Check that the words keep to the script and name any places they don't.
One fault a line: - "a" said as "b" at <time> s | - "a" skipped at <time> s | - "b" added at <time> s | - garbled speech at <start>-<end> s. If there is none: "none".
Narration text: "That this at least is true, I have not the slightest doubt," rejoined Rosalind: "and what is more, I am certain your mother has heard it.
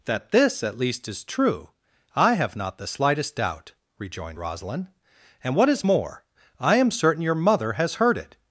none